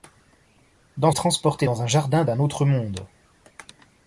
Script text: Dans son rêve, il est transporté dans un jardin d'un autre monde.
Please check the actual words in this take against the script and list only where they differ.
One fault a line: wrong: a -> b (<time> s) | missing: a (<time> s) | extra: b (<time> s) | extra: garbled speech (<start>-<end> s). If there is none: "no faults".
missing: son rêve il (1.1 s)